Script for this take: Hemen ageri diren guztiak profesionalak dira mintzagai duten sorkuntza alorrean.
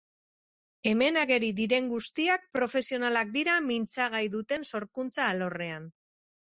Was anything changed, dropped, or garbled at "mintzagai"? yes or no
no